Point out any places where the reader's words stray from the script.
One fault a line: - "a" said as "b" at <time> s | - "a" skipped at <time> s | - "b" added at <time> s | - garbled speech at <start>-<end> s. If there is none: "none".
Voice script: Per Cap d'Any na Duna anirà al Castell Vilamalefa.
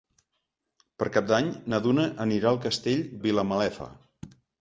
none